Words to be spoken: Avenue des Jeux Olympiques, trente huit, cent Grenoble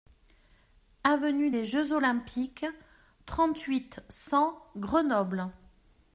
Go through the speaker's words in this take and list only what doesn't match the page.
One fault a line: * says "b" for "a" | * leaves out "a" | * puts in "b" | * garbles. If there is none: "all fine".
all fine